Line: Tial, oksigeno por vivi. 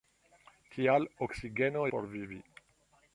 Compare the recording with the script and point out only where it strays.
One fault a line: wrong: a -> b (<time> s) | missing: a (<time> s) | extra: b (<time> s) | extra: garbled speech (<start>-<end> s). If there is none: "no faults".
no faults